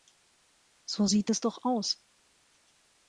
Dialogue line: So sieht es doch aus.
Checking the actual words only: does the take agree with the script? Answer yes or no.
yes